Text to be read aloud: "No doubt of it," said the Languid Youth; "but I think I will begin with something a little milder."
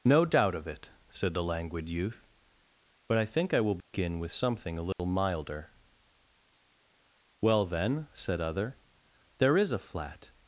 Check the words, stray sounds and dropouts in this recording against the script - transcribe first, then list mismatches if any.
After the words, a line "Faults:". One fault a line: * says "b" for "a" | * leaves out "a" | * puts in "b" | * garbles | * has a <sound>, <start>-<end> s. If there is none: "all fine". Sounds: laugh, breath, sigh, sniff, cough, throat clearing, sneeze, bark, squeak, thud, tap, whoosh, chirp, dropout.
"No doubt of it," said the Languid Youth; "but I think I will begin with something a little milder." "Well then," said other, "there is a flat
Faults:
* has a dropout, 3.8-3.9 s
* has a dropout, 4.9-5.0 s
* puts in "Well then said other there is a flat"